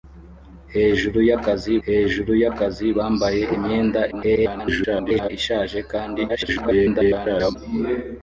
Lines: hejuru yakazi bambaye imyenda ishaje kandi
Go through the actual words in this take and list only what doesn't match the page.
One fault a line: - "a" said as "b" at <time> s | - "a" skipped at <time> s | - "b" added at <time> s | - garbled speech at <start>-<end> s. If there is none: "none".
- "hejuru yakazi" added at 1.9 s
- garbled speech at 4.1-5.3 s
- garbled speech at 6.3-7.6 s